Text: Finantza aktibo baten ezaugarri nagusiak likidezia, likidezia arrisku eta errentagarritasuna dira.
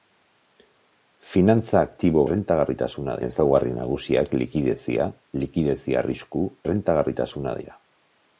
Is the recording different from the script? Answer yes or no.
yes